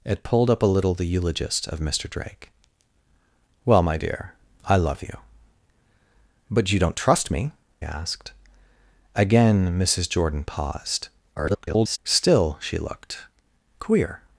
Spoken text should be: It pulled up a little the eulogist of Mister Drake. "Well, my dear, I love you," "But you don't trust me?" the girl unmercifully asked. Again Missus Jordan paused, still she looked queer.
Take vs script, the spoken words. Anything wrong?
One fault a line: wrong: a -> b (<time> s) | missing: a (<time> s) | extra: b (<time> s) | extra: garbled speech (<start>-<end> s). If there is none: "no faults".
missing: the girl unmercifully (7.5 s)
extra: garbled speech (11.4-12.0 s)